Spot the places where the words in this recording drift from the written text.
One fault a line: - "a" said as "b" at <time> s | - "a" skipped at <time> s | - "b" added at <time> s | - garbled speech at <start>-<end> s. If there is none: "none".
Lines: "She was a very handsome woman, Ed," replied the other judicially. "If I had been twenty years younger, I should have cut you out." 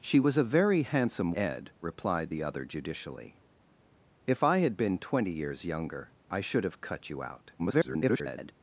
- "woman" skipped at 1.3 s
- garbled speech at 7.6-8.5 s